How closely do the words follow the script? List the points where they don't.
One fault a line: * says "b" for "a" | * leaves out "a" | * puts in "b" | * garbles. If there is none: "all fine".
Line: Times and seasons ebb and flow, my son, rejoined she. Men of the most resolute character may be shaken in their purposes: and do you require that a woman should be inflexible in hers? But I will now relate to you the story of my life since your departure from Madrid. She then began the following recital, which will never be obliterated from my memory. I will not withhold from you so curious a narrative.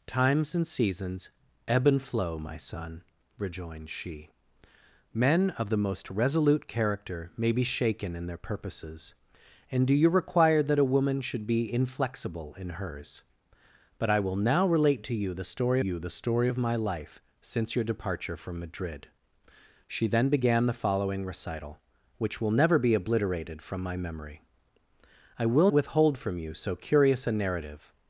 * puts in "you the story"
* leaves out "not"